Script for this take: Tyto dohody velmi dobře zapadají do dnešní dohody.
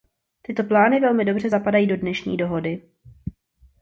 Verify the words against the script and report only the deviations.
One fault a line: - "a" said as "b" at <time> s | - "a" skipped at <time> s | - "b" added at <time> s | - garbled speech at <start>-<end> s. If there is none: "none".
- "dohody" said as "plány" at 0.6 s